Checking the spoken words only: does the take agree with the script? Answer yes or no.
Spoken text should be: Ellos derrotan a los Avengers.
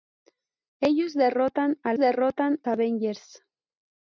no